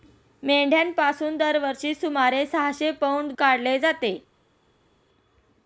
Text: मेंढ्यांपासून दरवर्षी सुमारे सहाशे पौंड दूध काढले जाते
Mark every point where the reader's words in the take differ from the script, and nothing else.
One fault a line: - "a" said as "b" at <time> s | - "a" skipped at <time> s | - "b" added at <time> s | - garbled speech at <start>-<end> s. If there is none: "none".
- "दूध" skipped at 3.3 s